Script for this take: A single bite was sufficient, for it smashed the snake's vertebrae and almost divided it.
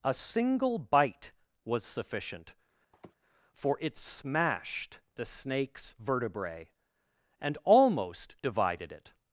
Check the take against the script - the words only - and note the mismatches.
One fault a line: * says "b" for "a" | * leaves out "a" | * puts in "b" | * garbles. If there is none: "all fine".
all fine